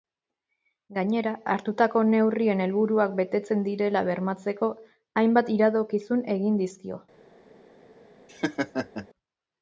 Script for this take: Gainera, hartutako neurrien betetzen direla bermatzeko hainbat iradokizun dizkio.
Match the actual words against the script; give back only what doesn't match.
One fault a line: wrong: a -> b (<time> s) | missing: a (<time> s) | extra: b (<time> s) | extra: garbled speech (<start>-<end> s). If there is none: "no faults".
extra: helburuak (2.6 s)
extra: egin (6.4 s)